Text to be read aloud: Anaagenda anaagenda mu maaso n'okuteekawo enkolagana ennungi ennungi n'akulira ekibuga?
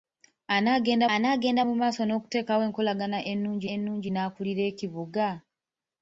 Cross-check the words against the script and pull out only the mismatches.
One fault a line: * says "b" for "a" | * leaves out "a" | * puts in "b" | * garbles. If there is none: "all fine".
all fine